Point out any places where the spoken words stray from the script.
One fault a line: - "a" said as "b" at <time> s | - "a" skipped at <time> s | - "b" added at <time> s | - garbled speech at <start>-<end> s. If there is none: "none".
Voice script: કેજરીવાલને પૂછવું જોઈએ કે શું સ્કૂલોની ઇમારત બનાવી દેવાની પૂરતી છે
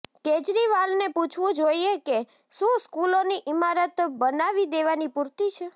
none